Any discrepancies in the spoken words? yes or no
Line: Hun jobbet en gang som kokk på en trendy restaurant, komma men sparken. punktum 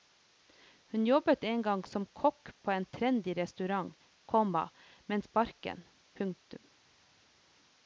no